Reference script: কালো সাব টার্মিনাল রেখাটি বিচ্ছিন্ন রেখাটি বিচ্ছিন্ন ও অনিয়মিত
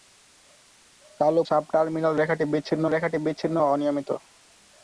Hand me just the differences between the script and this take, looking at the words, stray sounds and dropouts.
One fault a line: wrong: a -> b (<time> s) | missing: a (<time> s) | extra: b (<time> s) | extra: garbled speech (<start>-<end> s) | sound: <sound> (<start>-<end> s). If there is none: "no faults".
no faults